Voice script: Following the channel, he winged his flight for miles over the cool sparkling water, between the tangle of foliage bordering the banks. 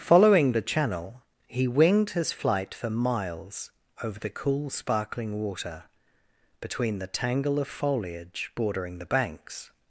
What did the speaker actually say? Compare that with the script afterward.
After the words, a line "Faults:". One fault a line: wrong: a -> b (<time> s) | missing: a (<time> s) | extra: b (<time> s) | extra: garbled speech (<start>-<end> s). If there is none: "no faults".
Following the channel, he winged his flight for miles over the cool sparkling water, between the tangle of foliage bordering the banks.
Faults:
no faults